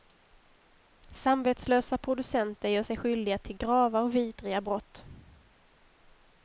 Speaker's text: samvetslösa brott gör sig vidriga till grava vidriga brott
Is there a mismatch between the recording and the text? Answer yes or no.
yes